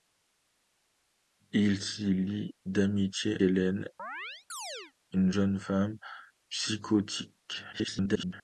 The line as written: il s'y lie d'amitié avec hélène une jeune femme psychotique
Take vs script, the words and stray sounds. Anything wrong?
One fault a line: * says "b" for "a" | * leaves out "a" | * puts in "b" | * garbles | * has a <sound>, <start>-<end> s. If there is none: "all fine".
* leaves out "avec"
* has a chirp, 4.0-4.9 s
* garbles